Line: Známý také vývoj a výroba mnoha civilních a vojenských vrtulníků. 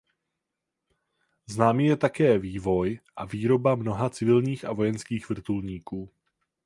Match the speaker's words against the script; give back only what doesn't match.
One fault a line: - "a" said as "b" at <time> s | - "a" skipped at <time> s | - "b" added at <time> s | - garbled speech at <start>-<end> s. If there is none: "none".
- "je" added at 1.9 s